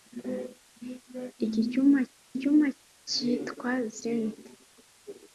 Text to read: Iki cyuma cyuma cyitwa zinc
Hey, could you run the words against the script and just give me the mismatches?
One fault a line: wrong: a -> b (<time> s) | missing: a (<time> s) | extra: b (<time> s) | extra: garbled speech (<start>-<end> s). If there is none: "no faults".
no faults